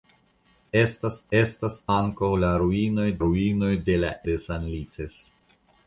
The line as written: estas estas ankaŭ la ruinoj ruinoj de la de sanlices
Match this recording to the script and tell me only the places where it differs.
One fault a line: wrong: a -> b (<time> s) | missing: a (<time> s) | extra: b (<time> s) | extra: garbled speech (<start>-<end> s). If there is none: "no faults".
no faults